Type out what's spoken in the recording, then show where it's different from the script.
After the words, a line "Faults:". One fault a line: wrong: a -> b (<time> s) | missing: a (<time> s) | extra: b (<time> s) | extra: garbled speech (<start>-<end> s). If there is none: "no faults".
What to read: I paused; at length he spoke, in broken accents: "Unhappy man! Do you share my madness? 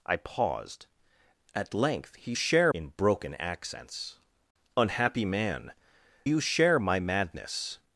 I paused; at length he share, in broken accents: "Unhappy man! You share my madness?
Faults:
wrong: spoke -> share (2.3 s)
missing: Do (5.7 s)